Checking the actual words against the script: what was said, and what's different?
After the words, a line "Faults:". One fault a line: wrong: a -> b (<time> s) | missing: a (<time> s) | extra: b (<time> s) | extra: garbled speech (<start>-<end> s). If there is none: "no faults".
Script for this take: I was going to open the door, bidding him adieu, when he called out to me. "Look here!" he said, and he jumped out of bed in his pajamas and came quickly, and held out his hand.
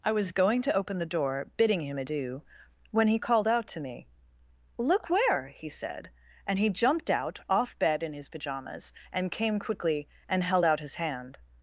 I was going to open the door, bidding him adieu, when he called out to me. "Look where!" he said, and he jumped out off bed in his pajamas and came quickly, and held out his hand.
Faults:
wrong: here -> where (5.1 s)
wrong: of -> off (7.5 s)